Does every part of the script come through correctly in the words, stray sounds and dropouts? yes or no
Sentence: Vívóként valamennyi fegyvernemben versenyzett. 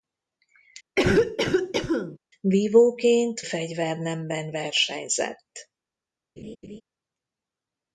no